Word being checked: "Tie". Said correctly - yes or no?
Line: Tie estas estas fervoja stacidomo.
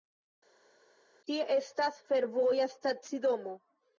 yes